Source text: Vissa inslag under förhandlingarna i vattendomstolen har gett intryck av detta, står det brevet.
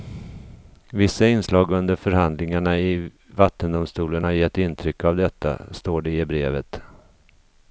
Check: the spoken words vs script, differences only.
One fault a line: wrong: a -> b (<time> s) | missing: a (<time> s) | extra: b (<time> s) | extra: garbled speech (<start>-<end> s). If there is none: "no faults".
extra: i (6.1 s)